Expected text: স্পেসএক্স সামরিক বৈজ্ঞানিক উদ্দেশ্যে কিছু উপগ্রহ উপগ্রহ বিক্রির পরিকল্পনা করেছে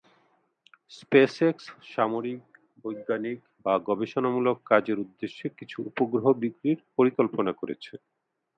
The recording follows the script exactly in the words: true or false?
false